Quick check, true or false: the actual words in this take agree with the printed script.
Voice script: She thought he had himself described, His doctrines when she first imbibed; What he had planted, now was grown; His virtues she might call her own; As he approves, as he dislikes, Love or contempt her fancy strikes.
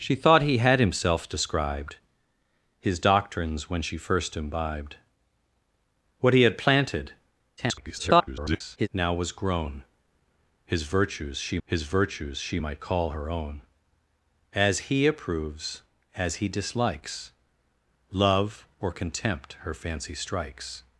false